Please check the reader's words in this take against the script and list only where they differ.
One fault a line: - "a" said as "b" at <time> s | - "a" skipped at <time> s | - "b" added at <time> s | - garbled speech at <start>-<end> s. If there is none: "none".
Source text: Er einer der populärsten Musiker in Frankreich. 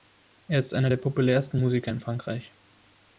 - "ist" added at 0.6 s